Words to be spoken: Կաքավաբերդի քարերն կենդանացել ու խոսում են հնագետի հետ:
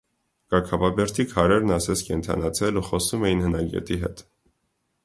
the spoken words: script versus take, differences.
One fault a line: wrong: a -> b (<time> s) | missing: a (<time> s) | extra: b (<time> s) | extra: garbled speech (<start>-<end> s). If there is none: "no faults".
extra: ասես (1.8 s)
wrong: են -> էին (3.3 s)